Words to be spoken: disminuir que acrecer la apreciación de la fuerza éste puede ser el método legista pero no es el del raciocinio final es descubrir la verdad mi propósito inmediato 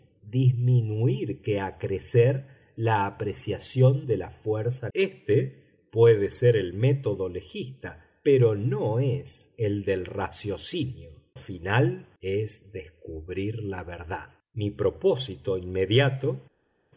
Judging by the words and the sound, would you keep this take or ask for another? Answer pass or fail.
pass